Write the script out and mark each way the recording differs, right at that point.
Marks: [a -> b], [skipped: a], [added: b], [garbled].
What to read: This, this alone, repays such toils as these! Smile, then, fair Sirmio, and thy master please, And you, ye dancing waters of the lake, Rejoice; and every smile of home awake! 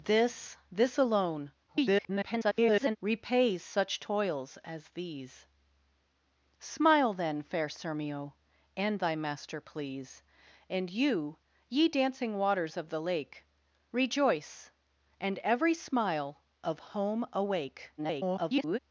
This, this alone, [garbled] repays such toils as these! Smile, then, fair Sirmio, and thy master please, And you, ye dancing waters of the lake, Rejoice; and every smile of home awake! [garbled]